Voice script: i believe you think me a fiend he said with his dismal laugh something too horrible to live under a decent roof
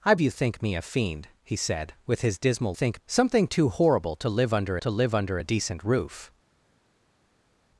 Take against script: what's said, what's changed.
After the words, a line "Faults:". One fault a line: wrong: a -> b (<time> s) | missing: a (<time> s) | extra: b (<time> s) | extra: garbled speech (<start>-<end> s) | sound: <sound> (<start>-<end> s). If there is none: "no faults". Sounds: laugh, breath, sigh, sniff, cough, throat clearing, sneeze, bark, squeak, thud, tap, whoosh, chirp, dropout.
i you think me a fiend he said with his dismal think something too horrible to live under to live under a decent roof
Faults:
missing: believe (0.1 s)
wrong: laugh -> think (2.7 s)
extra: to live under (4.8 s)